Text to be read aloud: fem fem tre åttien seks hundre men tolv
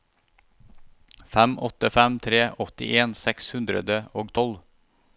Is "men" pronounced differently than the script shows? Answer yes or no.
yes